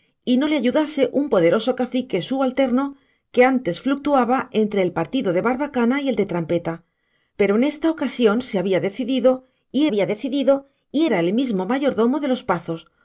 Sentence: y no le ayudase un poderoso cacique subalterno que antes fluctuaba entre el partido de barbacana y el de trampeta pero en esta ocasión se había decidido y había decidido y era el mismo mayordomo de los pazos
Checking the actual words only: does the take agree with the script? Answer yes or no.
yes